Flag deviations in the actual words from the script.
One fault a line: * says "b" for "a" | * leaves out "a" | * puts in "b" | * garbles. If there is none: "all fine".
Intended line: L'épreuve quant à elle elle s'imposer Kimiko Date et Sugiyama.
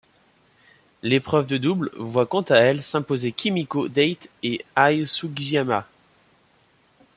* puts in "de double voit"
* leaves out "elle"
* puts in "Ai"